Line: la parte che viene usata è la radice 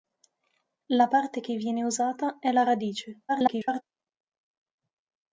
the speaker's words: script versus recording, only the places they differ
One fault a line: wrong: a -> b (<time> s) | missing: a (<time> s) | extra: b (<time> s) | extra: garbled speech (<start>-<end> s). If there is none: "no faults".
extra: garbled speech (3.3-3.8 s)